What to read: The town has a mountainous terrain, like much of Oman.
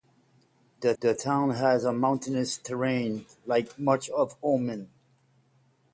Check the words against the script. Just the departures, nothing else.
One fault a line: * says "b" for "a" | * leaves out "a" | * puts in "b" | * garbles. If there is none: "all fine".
* puts in "the"